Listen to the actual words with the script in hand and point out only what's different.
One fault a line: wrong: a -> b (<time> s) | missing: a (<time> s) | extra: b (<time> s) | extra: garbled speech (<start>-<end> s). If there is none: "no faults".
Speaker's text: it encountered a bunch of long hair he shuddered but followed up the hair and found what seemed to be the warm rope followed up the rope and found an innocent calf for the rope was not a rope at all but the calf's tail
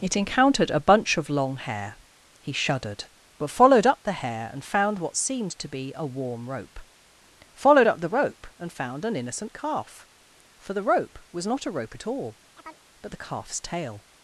wrong: the -> a (6.0 s)